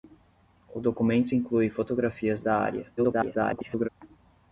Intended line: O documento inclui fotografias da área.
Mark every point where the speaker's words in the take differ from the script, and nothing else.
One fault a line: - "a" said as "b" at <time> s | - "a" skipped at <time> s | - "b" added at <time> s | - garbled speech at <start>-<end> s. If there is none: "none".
- garbled speech at 3.0-3.9 s